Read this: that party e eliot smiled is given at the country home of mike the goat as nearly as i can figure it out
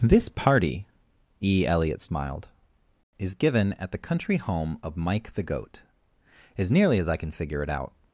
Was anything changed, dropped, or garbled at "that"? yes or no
yes